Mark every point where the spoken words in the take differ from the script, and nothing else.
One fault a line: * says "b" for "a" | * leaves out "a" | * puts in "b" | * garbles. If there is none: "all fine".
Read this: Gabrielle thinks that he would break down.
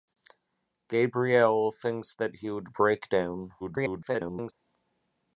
* garbles